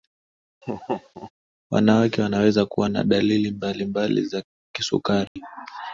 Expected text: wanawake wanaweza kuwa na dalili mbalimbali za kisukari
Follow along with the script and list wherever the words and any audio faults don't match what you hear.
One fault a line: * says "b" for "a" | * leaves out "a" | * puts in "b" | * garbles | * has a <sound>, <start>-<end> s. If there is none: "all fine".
* has a laugh, 0.6-1.3 s
* has a dropout, 5.3-5.4 s